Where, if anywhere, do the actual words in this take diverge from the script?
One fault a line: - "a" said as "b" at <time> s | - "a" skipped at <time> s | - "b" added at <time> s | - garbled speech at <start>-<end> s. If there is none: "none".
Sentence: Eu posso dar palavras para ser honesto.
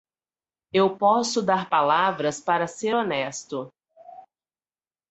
none